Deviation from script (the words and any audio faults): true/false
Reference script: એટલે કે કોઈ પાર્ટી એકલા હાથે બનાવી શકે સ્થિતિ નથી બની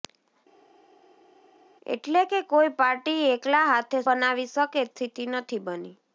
false